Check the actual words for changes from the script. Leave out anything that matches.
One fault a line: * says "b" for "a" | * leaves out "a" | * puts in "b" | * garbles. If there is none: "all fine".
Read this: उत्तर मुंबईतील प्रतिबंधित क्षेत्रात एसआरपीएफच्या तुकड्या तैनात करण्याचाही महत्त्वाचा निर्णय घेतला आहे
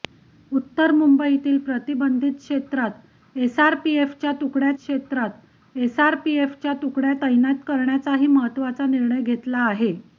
* puts in "क्षेत्रात एसआरपीएफच्या तुकड्या"